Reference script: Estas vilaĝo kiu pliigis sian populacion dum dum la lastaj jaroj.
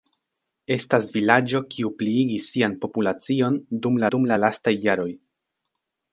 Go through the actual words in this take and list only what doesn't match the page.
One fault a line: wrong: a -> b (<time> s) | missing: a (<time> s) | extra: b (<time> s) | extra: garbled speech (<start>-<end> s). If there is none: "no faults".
no faults